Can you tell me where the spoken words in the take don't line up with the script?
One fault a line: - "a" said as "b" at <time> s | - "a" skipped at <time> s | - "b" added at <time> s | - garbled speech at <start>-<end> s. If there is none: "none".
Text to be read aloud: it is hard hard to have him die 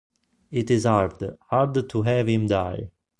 none